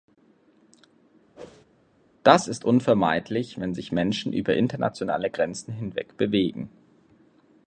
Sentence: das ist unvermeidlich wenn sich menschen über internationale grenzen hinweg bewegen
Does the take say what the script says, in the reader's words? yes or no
yes